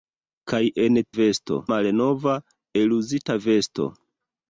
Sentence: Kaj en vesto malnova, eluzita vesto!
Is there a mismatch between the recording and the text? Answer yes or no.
no